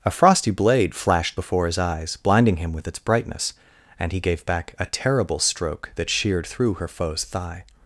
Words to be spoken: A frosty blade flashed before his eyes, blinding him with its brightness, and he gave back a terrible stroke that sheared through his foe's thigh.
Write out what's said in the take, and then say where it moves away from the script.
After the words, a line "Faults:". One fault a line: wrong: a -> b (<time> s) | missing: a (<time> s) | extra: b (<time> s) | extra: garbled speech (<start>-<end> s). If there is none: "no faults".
A frosty blade flashed before his eyes, blinding him with its brightness, and he gave back a terrible stroke that sheared through her foe's thigh.
Faults:
wrong: his -> her (6.7 s)